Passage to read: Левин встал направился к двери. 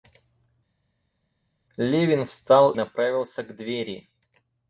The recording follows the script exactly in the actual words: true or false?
true